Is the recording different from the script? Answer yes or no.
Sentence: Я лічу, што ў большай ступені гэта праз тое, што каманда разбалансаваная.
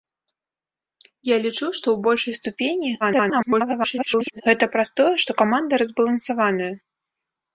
yes